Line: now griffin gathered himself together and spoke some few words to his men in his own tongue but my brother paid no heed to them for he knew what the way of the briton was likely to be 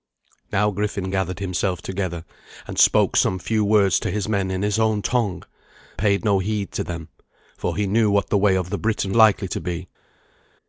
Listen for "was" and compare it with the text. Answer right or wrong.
wrong